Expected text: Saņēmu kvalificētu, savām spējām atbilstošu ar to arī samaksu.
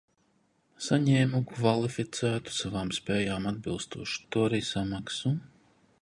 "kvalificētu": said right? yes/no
yes